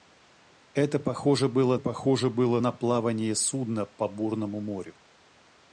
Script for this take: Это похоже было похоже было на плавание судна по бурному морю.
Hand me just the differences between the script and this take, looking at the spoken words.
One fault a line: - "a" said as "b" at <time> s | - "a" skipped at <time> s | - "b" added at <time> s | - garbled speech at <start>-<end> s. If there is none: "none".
none